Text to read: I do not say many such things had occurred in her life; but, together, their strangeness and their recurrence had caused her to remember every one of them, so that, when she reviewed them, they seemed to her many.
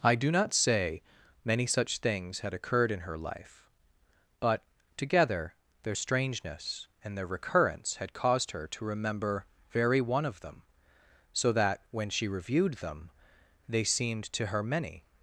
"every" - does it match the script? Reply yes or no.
no